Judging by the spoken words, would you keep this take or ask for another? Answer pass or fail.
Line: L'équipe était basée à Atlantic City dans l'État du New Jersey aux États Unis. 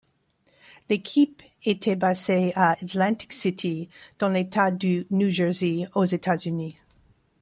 pass